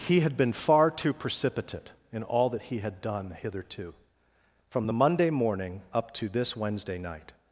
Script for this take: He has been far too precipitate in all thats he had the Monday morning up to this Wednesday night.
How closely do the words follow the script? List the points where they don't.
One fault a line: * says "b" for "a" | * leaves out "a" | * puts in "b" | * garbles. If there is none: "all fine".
* says "had" for "has"
* says "that" for "thats"
* puts in "done hitherto from"